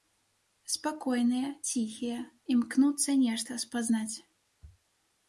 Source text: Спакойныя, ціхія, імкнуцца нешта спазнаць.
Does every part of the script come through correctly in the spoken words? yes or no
yes